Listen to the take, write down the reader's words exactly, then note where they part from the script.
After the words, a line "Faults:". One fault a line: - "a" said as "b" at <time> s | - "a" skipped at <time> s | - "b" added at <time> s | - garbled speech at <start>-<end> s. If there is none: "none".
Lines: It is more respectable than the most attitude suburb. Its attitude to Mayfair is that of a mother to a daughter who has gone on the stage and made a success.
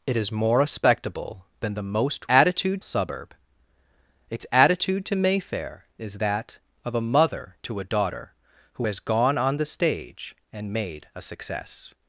It is more respectable than the most attitude suburb. Its attitude to Mayfair is that of a mother to a daughter who has gone on the stage and made a success.
Faults:
none